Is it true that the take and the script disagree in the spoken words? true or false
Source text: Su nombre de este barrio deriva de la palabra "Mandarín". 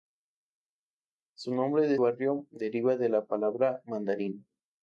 true